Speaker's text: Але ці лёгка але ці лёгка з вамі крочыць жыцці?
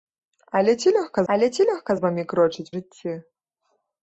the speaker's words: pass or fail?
pass